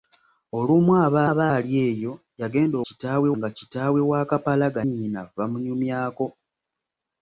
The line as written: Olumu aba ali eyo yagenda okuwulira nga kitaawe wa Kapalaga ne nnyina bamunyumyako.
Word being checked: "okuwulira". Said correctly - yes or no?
no